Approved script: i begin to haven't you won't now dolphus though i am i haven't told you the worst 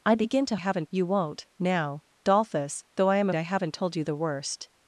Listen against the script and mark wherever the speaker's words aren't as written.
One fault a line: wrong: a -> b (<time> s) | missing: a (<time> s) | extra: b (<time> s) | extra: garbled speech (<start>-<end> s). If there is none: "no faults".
no faults